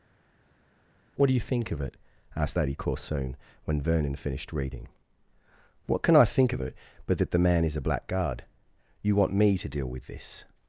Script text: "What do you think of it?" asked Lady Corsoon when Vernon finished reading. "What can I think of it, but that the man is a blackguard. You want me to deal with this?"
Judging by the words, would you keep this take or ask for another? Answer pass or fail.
pass